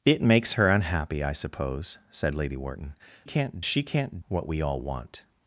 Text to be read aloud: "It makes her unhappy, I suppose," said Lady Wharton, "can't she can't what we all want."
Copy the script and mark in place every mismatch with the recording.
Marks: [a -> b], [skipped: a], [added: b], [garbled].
"It makes her unhappy, I suppose," said Lady Wharton, "can't she can't what we all want."